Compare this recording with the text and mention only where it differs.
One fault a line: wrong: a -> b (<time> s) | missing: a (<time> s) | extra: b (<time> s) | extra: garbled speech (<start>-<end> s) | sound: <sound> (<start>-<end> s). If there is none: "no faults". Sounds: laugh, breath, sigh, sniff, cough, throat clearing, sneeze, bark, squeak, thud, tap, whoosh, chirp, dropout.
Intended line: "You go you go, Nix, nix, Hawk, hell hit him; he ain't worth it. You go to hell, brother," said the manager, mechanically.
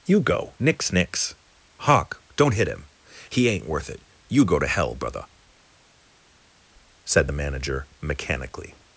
missing: you go (0.6 s)
wrong: hell -> don't (2.4 s)